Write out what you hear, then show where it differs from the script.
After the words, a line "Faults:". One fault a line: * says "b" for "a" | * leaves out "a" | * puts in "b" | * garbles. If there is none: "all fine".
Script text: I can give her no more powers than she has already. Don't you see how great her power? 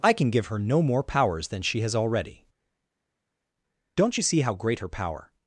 I can give her no more powers than she has already. Don't you see how great her power?
Faults:
all fine